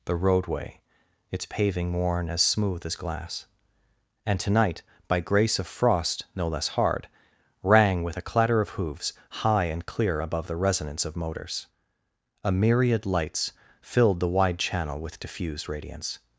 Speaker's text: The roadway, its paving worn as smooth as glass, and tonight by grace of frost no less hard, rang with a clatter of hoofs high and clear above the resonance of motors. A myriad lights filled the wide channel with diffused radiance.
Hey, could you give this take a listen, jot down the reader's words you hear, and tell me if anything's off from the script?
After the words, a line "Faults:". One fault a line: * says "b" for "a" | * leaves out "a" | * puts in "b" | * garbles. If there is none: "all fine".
The roadway, its paving worn as smooth as glass, and tonight by grace of frost no less hard, rang with a clatter of hoofs high and clear above the resonance of motors. A myriad lights filled the wide channel with diffused radiance.
Faults:
all fine